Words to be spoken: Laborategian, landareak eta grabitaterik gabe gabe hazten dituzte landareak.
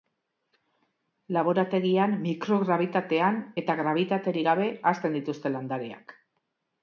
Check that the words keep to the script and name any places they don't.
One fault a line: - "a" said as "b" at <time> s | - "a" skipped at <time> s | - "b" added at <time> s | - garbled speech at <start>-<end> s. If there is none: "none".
- "landareak" said as "mikrograbitatean" at 2.2 s
- "gabe" skipped at 4.7 s